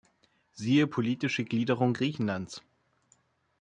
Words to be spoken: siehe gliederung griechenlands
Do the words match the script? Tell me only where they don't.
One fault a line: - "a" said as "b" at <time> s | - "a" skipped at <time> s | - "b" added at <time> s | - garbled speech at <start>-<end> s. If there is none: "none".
- "politische" added at 0.9 s